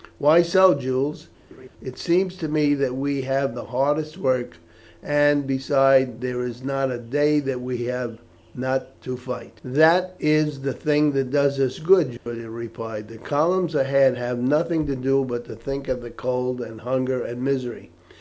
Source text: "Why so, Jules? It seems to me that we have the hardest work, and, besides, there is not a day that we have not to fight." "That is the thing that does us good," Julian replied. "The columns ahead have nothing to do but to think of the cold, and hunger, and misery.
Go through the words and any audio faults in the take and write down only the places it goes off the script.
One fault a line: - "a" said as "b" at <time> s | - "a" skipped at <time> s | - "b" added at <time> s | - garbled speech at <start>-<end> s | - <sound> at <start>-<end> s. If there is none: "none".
- laugh at 1.5-1.7 s
- dropout at 12.2-12.3 s